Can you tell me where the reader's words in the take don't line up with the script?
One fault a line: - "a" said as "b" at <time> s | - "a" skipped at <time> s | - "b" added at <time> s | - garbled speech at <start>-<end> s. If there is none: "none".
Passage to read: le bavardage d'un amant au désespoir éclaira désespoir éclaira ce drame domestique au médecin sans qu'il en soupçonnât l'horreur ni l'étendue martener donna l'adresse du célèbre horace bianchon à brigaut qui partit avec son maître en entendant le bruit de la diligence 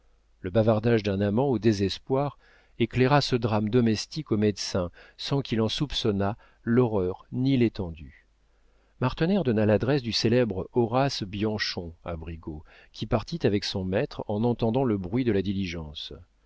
- "désespoir éclaira" skipped at 3.2 s